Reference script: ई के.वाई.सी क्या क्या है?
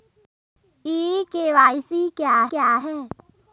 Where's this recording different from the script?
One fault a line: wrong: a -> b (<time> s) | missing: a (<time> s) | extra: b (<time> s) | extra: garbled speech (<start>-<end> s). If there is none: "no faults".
no faults